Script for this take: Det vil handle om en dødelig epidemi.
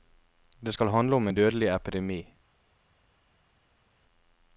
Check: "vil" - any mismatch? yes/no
yes